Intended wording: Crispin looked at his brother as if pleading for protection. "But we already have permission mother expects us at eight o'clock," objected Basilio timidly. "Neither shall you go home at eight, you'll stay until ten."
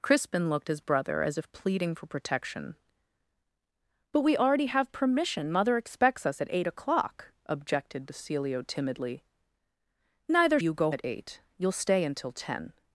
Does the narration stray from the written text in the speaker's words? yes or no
yes